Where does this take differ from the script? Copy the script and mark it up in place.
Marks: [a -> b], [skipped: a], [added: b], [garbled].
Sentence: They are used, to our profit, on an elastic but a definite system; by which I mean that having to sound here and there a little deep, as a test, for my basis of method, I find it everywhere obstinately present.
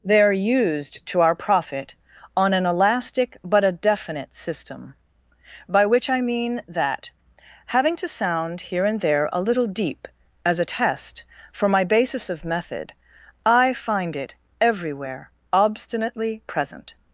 They are used, to our profit, on an elastic but a definite system; by which I mean that having to sound here and there a little deep, as a test, for my basis of method, I find it everywhere obstinately present.